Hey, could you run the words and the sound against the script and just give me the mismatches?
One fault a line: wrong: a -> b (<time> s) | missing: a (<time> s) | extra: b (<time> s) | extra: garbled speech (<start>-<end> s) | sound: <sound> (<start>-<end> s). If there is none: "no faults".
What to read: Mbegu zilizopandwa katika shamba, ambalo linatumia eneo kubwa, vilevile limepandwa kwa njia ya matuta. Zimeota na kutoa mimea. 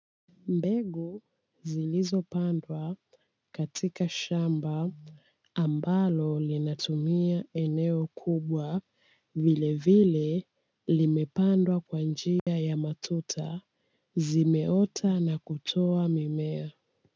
sound: dropout (12.4-12.5 s)